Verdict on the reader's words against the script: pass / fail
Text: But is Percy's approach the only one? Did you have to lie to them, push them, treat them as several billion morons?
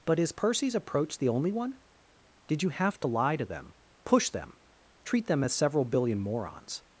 pass